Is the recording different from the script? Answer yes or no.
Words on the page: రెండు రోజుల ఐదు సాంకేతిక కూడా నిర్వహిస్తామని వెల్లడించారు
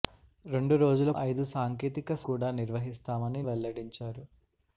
no